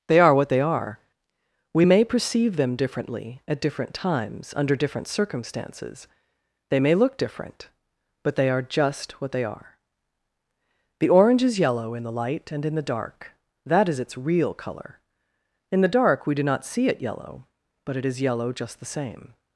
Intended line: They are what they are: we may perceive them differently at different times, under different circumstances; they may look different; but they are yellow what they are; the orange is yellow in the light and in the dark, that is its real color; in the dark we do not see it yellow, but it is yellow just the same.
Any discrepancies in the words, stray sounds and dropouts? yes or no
yes